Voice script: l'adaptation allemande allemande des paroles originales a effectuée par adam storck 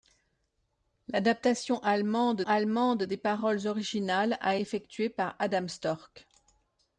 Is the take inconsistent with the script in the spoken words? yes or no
no